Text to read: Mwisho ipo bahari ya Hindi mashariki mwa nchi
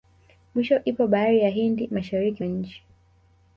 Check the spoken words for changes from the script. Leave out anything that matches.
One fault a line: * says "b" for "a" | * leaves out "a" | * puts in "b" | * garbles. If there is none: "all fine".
* leaves out "mwa"